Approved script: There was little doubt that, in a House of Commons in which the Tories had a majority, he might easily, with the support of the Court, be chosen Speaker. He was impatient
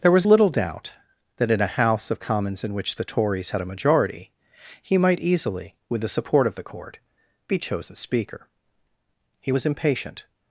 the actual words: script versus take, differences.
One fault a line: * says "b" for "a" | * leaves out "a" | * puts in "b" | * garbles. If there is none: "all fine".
all fine